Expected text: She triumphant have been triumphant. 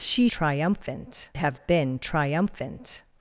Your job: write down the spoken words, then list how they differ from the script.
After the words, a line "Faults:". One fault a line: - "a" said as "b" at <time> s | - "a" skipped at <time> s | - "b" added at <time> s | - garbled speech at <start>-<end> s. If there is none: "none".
She triumphant have been triumphant.
Faults:
none